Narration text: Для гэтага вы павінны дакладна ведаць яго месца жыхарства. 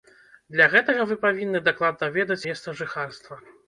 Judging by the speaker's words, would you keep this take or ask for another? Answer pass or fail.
fail